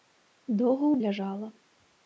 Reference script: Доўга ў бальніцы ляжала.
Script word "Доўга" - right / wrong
right